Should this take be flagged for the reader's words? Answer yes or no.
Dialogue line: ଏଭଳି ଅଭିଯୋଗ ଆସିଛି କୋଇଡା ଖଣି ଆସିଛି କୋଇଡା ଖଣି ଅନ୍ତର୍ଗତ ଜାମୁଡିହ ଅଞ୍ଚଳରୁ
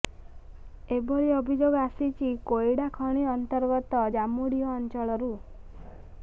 yes